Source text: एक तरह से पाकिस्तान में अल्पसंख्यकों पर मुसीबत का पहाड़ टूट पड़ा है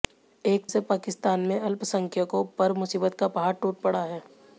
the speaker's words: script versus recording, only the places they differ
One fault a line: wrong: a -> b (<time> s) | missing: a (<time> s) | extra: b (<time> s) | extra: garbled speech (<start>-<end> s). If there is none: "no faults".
missing: तरह (0.7 s)